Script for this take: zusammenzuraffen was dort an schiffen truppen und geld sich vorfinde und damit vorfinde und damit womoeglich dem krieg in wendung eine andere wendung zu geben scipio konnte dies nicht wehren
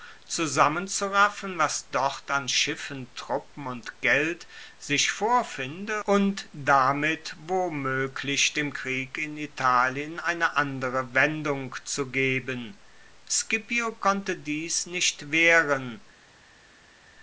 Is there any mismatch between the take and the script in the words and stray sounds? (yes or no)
yes